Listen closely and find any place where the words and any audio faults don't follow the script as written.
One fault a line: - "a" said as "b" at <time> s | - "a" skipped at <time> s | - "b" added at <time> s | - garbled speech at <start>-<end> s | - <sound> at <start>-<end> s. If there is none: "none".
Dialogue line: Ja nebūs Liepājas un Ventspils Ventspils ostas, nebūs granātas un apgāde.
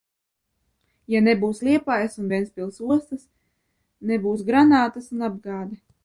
- "Ventspils" skipped at 2.8 s